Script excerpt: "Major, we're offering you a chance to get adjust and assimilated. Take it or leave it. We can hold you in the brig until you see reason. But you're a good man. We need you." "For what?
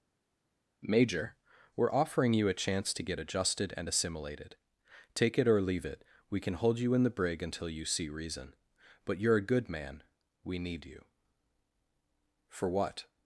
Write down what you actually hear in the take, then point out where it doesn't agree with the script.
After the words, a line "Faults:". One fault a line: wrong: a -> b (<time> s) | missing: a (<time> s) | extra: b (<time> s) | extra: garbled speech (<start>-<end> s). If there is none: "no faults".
"Major, we're offering you a chance to get adjusted and assimilated. Take it or leave it. We can hold you in the brig until you see reason. But you're a good man. We need you." "For what?
Faults:
wrong: adjust -> adjusted (3.2 s)